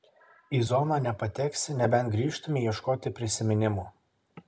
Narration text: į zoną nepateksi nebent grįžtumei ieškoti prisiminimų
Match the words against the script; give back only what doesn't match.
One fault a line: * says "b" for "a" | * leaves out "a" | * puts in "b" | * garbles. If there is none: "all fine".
all fine